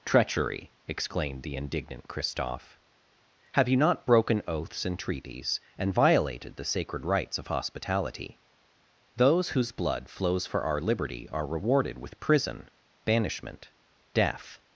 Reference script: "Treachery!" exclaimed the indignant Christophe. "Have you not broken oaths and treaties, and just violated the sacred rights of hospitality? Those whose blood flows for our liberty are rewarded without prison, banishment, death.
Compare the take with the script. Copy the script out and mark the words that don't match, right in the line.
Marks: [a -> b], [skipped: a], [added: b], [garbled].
"Treachery!" exclaimed the indignant Christophe. "Have you not broken oaths and treaties, and [skipped: just] violated the sacred rights of hospitality? Those whose blood flows for our liberty are rewarded [without -> with] prison, banishment, death.